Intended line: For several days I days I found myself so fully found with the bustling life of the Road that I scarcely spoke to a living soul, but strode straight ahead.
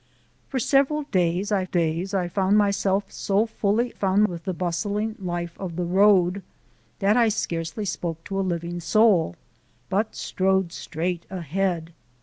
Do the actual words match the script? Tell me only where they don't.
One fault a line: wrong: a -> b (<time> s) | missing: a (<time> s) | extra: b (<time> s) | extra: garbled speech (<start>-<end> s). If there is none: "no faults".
no faults